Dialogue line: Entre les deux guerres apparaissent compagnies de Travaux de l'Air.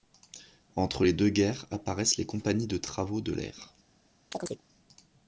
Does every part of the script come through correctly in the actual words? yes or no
no